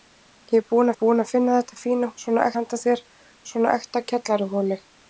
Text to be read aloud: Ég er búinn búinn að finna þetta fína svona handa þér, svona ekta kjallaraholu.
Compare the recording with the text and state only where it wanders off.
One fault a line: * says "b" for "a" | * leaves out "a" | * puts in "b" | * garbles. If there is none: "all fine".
all fine